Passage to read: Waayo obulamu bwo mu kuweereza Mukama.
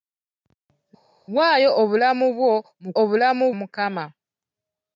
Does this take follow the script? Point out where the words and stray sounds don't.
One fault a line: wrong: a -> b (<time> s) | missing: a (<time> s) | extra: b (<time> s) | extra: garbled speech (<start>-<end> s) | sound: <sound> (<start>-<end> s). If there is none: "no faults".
wrong: kuweereza -> obulamu (3.0 s)